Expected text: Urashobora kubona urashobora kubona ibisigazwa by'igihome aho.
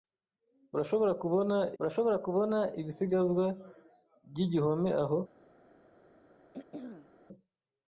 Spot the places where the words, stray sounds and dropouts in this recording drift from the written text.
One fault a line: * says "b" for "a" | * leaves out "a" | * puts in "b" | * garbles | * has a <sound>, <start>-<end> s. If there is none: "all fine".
* has a throat clearing, 6.5-7.1 s